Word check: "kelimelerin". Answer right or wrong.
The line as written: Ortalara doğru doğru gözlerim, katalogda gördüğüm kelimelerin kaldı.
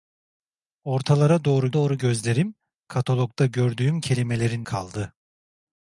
right